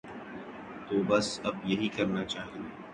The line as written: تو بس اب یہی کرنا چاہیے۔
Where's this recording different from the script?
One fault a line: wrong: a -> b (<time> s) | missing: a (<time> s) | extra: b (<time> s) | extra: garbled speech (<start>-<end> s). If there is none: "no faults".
no faults